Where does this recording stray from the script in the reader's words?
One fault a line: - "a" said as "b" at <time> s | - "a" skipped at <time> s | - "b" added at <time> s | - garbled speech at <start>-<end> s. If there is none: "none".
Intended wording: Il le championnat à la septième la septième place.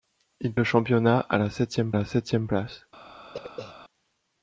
none